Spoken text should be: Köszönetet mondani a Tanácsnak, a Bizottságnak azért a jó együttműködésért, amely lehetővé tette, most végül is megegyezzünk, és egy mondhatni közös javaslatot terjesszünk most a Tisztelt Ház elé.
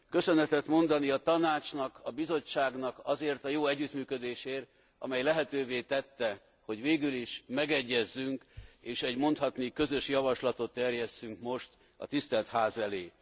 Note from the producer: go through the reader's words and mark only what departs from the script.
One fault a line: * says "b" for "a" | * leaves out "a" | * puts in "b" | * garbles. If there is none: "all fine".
* says "hogy" for "most"